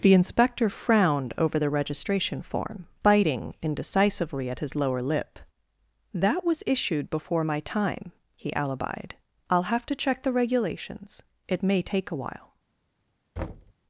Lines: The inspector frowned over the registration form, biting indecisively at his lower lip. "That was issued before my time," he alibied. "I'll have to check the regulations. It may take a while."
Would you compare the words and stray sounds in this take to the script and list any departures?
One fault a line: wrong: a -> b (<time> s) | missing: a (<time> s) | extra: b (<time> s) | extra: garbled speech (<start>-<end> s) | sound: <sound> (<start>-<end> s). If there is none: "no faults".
sound: thud (13.4-13.7 s)